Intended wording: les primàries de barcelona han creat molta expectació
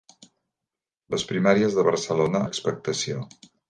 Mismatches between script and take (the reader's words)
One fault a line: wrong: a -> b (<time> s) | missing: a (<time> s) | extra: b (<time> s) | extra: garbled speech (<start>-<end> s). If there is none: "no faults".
missing: han creat molta (2.4 s)